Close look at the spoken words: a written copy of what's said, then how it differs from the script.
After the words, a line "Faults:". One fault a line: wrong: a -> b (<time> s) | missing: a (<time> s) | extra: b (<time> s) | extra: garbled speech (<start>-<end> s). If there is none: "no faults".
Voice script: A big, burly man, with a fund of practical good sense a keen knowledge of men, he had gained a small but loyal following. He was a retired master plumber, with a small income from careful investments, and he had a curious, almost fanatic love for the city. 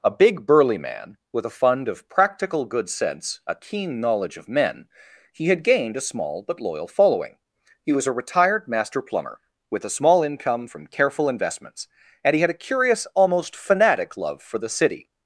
A big, burly man, with a fund of practical good sense a keen knowledge of men, he had gained a small but loyal following. He was a retired master plumber, with a small income from careful investments, and he had a curious, almost fanatic love for the city.
Faults:
no faults